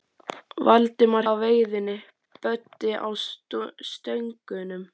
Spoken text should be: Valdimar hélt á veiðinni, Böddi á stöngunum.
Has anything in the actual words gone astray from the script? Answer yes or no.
yes